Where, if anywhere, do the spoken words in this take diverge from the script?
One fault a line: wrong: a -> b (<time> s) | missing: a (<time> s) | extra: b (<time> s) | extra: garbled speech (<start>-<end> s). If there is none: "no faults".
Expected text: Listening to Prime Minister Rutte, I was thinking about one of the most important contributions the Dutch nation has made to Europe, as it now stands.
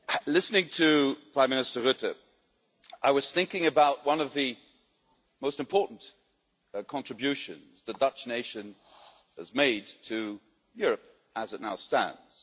no faults